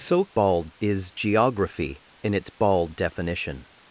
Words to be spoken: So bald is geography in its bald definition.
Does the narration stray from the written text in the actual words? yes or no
no